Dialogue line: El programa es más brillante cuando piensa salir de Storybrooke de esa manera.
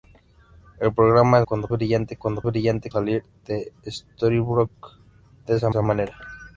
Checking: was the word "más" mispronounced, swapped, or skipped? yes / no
yes